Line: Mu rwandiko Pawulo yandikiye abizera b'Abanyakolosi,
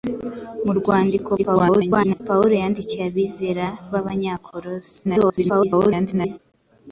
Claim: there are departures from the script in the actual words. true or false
true